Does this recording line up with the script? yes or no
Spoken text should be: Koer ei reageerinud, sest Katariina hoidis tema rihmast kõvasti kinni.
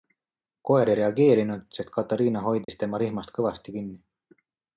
yes